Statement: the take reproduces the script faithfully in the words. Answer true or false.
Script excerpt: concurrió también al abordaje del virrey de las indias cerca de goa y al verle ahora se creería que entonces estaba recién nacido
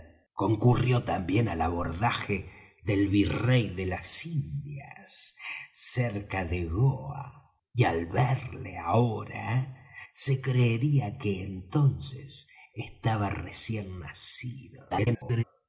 false